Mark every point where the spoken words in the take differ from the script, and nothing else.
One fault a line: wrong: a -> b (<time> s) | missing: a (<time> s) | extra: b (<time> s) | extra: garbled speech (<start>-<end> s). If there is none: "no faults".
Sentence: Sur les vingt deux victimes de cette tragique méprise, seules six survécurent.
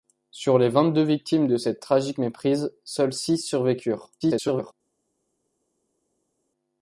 extra: garbled speech (4.2-4.7 s)